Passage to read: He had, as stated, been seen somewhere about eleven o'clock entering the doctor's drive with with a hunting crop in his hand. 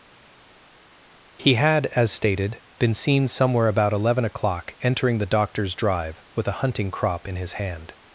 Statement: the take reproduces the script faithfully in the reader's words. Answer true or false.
false